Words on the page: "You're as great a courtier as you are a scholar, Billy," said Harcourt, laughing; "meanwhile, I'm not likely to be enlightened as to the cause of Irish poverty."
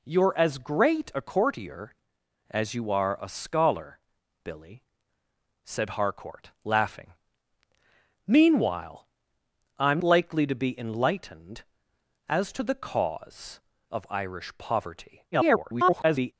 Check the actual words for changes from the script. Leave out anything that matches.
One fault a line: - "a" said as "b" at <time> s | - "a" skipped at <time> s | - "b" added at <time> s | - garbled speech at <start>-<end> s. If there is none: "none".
- "not" skipped at 10.0 s
- garbled speech at 15.3-16.3 s